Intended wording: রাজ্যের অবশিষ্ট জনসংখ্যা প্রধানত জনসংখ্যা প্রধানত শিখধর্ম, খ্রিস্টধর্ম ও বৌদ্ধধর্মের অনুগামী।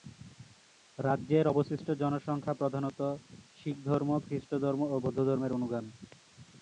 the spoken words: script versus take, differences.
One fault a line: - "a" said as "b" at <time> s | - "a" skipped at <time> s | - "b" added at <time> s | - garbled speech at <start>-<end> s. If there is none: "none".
- "জনসংখ্যা প্রধানত" skipped at 3.0 s